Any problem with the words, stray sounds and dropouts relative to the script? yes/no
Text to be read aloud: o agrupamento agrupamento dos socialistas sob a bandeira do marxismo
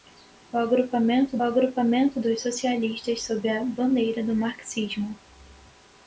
no